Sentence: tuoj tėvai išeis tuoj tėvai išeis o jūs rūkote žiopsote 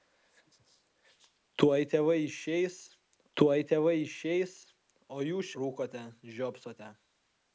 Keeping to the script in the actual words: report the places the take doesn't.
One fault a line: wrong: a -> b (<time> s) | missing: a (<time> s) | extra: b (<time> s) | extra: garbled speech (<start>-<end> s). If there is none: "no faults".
no faults